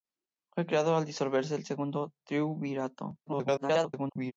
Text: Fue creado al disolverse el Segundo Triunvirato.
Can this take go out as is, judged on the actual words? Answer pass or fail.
fail